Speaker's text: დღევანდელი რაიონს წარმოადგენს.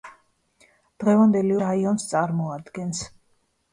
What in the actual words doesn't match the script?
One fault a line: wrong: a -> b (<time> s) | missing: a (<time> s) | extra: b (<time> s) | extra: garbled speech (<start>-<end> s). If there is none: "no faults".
no faults